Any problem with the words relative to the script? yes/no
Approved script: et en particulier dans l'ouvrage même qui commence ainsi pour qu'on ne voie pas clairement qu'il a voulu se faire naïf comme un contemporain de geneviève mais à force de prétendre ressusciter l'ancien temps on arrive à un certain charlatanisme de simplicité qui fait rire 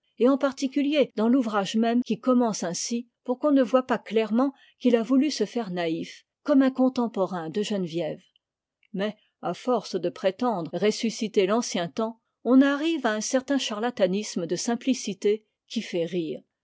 no